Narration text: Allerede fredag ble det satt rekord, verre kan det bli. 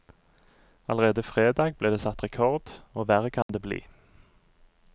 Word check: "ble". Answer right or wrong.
right